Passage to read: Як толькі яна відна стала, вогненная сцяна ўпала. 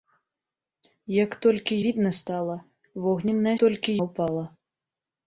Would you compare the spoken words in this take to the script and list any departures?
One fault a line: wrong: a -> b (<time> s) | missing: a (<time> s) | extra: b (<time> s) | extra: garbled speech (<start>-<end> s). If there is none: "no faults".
missing: яна (1.8 s)
wrong: сцяна -> толькі (3.6 s)